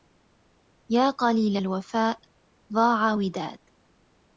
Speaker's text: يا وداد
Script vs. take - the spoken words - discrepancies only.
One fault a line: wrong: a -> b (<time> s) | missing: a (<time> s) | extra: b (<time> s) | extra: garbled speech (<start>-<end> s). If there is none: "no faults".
extra: قليل الوفاء ضاع (1.1 s)